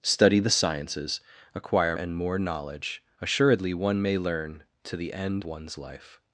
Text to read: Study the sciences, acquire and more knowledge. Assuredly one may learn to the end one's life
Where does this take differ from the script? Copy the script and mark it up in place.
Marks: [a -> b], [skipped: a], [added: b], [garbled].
Study the sciences, acquire and more knowledge. Assuredly one may learn to the end one's life